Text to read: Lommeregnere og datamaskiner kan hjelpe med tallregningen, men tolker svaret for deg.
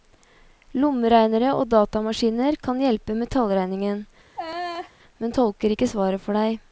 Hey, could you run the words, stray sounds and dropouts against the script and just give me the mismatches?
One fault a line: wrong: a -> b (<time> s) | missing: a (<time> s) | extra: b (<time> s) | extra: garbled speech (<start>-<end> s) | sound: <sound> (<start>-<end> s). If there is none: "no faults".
sound: laugh (4.4-4.9 s)
extra: ikke (5.7 s)